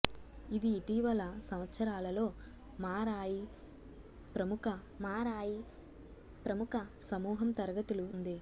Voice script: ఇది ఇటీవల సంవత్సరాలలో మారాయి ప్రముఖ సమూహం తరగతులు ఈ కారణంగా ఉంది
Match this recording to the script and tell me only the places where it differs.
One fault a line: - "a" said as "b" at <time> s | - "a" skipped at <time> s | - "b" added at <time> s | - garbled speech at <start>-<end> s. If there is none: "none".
- "మారాయి ప్రముఖ" added at 5.0 s
- "ఈ కారణంగా" skipped at 8.1 s